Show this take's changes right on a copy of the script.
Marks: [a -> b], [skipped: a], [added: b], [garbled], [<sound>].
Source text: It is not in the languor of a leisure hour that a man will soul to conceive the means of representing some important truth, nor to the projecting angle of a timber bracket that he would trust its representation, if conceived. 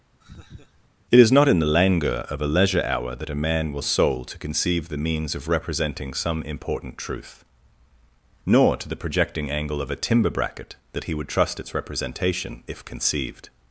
[laugh] It is not in the languor of a leisure hour that a man will soul to conceive the means of representing some important truth, nor to the projecting angle of a timber bracket that he would trust its representation, if conceived.